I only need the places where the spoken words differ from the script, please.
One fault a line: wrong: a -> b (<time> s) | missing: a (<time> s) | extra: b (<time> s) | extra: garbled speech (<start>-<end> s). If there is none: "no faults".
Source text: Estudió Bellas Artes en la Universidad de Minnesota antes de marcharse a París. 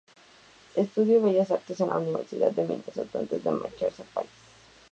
no faults